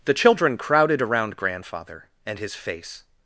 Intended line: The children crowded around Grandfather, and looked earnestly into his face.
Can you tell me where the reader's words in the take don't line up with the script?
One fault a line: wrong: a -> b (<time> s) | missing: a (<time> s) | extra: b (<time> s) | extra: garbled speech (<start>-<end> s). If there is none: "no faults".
missing: looked earnestly into (2.4 s)